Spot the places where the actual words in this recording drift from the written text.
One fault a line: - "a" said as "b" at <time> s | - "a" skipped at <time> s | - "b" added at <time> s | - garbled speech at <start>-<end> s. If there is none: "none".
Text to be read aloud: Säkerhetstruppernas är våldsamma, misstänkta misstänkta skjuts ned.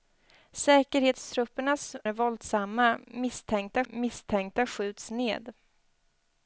none